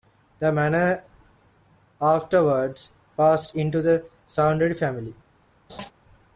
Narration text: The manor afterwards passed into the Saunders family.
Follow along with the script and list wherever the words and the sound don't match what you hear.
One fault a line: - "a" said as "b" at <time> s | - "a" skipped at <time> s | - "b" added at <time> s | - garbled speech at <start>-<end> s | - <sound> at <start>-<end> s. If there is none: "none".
- laugh at 5.7-5.9 s